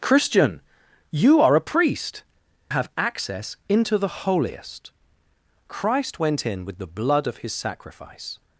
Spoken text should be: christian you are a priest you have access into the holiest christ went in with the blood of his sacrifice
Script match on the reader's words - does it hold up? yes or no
no